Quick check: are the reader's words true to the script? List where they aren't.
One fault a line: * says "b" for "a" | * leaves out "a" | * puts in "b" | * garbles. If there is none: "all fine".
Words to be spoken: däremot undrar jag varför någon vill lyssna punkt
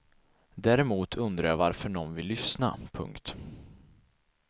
all fine